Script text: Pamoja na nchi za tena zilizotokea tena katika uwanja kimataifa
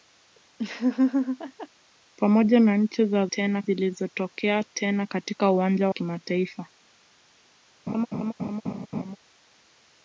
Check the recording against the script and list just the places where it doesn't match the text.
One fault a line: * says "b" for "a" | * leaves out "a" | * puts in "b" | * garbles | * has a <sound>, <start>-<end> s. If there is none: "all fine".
* has a laugh, 0.6-1.7 s
* has a laugh, 7.9-9.2 s